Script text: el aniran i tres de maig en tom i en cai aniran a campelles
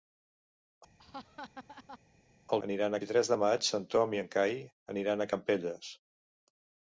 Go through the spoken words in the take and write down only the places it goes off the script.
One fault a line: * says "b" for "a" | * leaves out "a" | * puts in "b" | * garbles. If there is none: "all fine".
all fine